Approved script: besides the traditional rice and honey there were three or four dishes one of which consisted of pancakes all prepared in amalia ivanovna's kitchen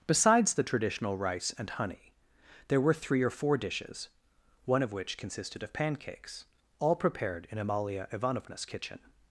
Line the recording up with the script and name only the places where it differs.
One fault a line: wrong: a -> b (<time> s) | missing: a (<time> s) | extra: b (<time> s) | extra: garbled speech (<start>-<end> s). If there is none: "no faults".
no faults